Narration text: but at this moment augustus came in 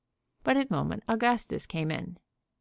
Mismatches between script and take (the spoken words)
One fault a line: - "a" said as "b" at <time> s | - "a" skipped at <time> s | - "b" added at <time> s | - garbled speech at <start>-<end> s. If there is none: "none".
- "this" skipped at 0.7 s